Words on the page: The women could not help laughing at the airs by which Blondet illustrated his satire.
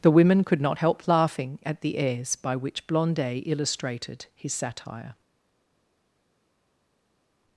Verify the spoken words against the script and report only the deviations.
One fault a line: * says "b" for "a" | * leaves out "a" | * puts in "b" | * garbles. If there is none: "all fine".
all fine